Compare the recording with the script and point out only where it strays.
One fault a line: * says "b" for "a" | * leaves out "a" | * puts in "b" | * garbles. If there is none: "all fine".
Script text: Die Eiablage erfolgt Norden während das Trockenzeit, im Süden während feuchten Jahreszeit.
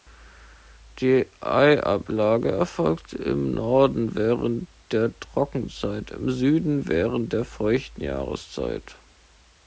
* puts in "im"
* says "der" for "das"
* puts in "der"